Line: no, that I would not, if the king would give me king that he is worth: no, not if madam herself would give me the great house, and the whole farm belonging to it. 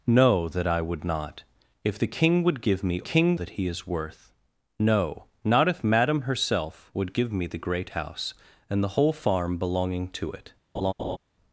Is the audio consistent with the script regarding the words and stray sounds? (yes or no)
no